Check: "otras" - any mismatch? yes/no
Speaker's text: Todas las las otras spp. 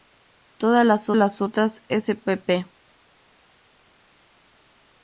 no